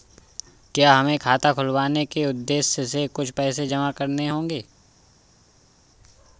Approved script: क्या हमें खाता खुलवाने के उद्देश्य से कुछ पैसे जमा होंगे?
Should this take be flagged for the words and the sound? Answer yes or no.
yes